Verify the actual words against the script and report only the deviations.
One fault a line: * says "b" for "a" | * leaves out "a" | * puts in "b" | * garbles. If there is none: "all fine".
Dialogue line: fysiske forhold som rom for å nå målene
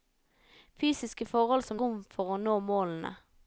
all fine